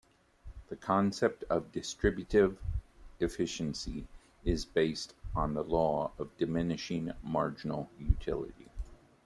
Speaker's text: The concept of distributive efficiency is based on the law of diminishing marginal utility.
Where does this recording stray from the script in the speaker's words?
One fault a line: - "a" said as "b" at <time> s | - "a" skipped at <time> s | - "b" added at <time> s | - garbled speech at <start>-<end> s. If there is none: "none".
none